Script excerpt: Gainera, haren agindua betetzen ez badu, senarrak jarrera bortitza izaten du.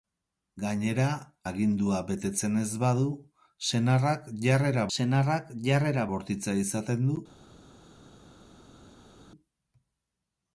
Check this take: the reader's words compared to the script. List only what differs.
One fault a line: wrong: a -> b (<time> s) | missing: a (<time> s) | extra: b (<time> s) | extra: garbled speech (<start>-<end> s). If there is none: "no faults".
missing: haren (1.1 s)
extra: senarrak jarrera (5.0 s)